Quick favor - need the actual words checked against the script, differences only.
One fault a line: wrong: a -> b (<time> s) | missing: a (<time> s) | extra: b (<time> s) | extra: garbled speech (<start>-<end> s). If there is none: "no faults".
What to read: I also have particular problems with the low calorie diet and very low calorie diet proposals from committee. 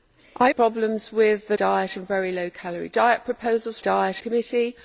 missing: also have particular (0.5 s)
missing: low calorie (1.6 s)
wrong: from -> diet (3.8 s)